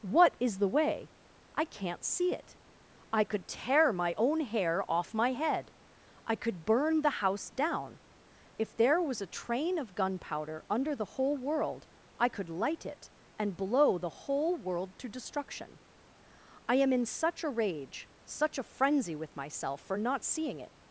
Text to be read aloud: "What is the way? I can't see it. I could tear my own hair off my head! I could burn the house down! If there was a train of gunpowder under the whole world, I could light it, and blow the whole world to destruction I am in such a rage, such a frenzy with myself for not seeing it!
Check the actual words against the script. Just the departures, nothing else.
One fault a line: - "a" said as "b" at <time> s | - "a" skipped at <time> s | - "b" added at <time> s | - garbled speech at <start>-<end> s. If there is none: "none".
none